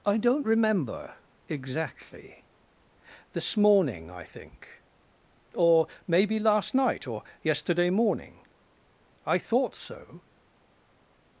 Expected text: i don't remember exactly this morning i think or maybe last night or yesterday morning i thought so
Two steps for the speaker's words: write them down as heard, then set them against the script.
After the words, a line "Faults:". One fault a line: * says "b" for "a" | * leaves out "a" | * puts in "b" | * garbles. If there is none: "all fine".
i don't remember exactly this morning i think or maybe last night or yesterday morning i thought so
Faults:
all fine